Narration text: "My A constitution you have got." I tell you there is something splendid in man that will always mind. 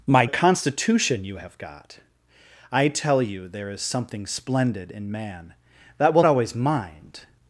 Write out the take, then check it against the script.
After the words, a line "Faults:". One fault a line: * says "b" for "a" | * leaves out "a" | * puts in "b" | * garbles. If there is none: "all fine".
"My A constitution you have got." I tell you there is something splendid in man that will always mind.
Faults:
all fine